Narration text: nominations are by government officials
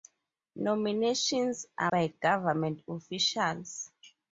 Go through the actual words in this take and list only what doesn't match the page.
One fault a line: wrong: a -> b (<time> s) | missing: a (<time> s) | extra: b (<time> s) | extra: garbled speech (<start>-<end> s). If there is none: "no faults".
no faults